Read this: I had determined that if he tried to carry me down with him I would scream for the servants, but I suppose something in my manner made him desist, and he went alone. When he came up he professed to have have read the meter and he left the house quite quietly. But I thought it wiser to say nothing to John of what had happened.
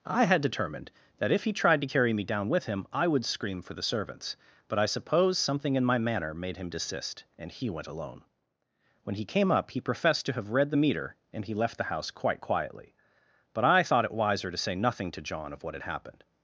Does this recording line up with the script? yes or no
no